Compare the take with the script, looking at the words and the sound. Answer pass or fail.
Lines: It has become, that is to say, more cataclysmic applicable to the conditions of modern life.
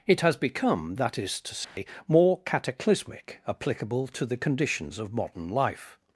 fail